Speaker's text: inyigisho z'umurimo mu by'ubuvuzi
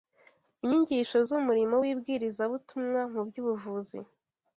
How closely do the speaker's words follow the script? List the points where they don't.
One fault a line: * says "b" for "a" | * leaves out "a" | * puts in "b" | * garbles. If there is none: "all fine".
* puts in "w'ibwirizabutumwa"